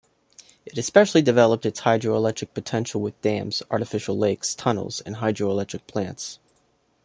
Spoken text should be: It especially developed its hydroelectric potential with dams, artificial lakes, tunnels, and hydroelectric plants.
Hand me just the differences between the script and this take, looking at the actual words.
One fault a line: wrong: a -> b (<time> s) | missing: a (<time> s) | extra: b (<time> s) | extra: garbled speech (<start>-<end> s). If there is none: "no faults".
no faults